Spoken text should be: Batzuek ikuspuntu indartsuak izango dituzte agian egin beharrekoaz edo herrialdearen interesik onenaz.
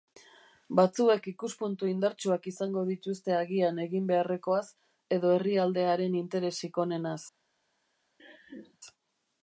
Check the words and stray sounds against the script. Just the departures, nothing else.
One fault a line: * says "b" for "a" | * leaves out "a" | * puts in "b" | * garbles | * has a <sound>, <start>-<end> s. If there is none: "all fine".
* has a laugh, 8.2-8.8 s